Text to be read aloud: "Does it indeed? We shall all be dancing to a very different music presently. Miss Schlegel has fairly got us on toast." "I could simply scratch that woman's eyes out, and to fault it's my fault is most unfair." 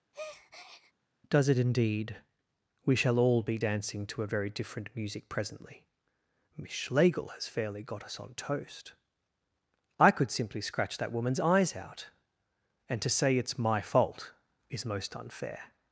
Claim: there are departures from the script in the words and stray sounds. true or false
true